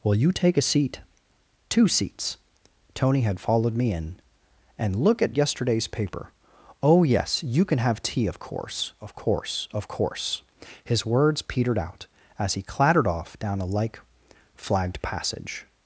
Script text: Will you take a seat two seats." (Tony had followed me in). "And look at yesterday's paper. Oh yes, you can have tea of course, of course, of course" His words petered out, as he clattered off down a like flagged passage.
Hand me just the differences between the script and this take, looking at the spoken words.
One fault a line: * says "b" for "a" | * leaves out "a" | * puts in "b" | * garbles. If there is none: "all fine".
all fine